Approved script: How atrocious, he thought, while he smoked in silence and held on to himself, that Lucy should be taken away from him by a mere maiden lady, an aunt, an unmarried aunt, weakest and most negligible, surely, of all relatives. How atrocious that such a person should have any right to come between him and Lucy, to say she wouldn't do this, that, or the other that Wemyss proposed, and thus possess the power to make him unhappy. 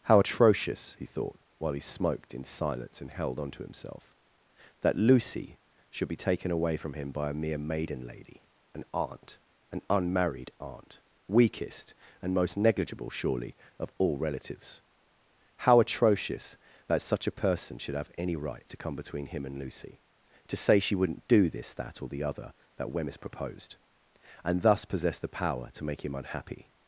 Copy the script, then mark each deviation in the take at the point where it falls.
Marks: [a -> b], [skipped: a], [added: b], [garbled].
How atrocious, he thought, while he smoked in silence and held on to himself, that Lucy should be taken away from him by a mere maiden lady, an aunt, an unmarried aunt, weakest and most negligible, surely, of all relatives. How atrocious that such a person should have any right to come between him and Lucy, to say she wouldn't do this, that, or the other that Wemyss proposed, and thus possess the power to make him unhappy.